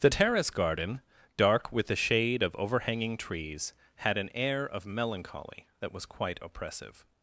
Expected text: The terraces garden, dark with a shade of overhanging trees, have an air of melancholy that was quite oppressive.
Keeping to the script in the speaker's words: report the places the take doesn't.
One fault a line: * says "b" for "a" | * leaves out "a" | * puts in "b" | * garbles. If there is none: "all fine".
* says "terrace" for "terraces"
* says "the" for "a"
* says "had" for "have"